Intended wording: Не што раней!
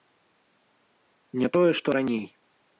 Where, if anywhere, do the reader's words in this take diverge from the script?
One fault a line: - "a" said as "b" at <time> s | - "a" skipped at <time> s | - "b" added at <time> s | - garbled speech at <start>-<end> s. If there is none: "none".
- "тое" added at 1.6 s